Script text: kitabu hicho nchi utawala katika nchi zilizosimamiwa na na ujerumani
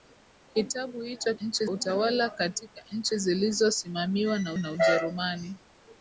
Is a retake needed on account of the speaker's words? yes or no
no